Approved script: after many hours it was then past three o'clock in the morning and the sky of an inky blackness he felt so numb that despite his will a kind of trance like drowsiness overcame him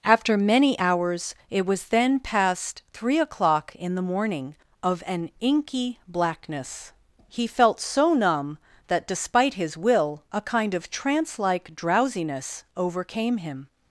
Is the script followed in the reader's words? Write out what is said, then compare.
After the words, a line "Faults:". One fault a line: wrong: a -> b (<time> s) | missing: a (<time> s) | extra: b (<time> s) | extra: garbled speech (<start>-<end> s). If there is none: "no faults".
after many hours it was then past three o'clock in the morning of an inky blackness he felt so numb that despite his will a kind of trance like drowsiness overcame him
Faults:
missing: and the sky (4.5 s)